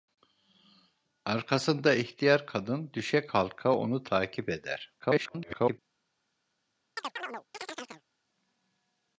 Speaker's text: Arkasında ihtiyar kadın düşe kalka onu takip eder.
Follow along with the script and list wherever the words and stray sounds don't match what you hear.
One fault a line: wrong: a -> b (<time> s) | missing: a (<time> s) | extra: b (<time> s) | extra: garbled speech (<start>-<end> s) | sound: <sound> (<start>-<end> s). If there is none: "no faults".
extra: garbled speech (5.0-5.8 s)
sound: chirp (7.0-8.0 s)